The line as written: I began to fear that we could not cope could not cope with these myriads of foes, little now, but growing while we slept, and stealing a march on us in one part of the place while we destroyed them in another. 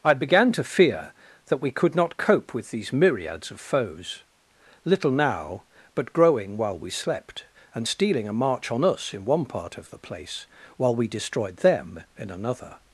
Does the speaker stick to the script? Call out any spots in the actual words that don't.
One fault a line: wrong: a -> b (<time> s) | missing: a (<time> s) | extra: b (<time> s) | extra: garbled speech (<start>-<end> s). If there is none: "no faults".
missing: could not cope (2.5 s)